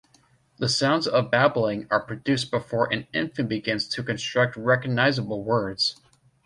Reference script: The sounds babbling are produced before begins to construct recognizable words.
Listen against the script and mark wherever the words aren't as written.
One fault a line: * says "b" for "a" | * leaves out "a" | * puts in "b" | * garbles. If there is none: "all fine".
* puts in "of"
* puts in "an infant"